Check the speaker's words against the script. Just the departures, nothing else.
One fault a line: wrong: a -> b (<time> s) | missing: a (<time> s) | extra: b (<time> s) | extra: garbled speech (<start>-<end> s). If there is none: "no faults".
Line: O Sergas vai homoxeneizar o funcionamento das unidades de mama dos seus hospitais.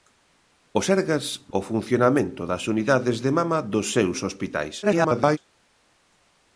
missing: vai homoxeneizar (1.2 s)
extra: garbled speech (4.8-5.4 s)